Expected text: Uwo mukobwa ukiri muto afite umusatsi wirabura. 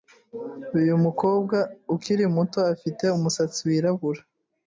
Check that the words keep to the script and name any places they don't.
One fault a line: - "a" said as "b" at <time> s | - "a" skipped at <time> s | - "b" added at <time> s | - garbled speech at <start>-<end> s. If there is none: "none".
- "Uwo" said as "Uyu" at 0.8 s